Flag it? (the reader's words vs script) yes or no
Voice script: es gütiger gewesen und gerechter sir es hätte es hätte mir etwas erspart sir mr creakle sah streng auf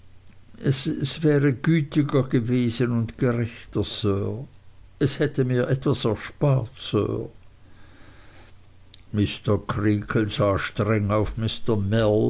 yes